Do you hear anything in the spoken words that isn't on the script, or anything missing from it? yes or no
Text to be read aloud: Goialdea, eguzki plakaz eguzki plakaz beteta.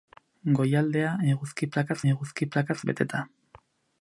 no